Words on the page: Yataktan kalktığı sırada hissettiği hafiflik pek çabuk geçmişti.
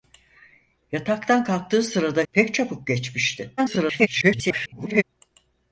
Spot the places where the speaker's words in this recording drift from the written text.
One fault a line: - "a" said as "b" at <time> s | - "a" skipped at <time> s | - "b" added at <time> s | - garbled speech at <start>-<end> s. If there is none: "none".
- "hissettiği hafiflik" skipped at 2.2 s
- garbled speech at 3.6-5.0 s